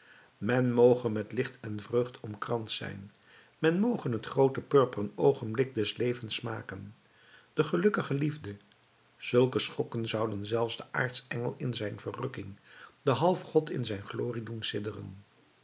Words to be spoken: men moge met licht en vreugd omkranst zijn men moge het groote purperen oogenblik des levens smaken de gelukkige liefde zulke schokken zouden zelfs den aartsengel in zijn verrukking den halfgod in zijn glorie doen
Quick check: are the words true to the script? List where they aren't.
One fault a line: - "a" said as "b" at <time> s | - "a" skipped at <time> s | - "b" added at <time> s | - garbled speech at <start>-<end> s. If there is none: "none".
none